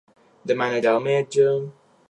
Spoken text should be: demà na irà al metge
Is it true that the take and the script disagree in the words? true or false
false